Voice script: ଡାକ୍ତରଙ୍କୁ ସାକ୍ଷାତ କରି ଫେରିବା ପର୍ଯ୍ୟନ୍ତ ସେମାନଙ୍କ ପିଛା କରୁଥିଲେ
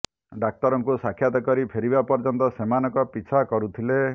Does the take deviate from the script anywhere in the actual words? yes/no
no